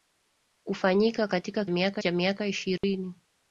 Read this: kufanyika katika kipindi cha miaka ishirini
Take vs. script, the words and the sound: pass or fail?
fail